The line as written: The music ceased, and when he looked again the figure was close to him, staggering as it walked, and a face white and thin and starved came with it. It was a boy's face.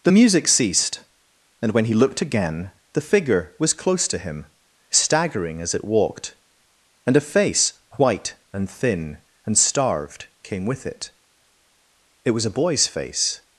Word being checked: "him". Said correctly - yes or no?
yes